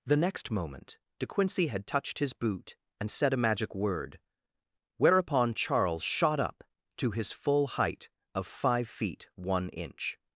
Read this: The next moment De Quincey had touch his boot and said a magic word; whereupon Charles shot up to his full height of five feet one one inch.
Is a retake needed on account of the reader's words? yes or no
yes